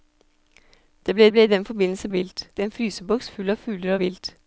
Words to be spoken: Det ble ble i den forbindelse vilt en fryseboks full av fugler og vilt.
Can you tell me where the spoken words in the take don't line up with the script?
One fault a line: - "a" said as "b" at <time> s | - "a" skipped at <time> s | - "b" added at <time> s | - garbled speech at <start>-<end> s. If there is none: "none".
none